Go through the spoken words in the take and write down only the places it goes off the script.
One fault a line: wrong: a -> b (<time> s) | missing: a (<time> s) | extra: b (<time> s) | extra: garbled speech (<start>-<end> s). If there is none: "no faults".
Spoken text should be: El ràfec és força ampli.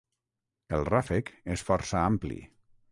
no faults